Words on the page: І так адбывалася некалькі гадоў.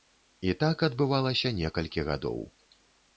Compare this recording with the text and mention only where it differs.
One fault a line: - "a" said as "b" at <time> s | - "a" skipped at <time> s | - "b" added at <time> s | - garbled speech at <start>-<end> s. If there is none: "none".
none